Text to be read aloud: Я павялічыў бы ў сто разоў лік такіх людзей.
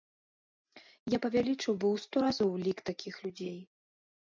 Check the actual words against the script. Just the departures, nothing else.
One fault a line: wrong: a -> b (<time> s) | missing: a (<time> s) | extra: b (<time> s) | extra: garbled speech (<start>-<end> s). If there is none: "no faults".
no faults